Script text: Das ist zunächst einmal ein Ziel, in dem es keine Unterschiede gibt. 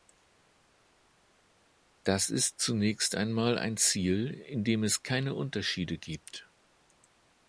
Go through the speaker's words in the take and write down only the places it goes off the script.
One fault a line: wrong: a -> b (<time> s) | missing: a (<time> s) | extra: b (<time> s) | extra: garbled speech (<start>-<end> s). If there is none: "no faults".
no faults